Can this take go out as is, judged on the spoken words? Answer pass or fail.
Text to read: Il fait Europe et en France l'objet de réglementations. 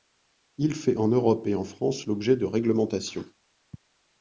fail